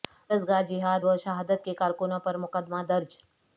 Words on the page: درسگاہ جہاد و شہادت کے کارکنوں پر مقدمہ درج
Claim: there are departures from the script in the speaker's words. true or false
false